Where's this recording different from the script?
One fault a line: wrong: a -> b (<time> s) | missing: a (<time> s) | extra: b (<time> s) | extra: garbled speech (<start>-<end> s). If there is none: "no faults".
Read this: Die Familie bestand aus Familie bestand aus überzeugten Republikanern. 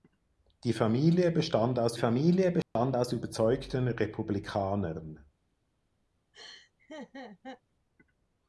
no faults